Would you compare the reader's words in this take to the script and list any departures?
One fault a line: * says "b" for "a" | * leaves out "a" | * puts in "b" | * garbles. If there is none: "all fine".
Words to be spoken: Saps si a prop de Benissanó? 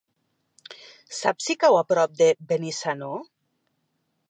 * puts in "cau"